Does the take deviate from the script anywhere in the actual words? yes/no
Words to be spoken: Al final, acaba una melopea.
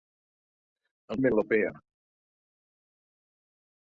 yes